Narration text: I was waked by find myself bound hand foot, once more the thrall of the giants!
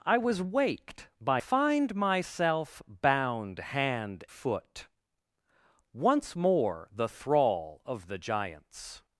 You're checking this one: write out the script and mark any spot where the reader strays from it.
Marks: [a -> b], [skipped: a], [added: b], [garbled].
I was waked by find myself bound hand foot, once more the thrall of the giants!